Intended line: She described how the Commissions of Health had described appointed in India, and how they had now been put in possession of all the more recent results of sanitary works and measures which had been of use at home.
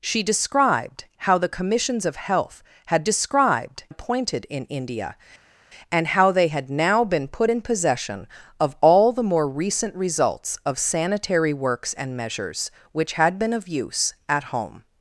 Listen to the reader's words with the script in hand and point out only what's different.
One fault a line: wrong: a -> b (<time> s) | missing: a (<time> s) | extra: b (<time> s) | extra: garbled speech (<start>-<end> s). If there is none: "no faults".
no faults